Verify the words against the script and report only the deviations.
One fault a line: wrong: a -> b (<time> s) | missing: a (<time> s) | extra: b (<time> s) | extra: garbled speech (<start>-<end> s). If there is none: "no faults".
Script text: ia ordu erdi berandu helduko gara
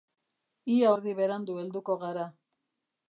missing: ordu (0.9 s)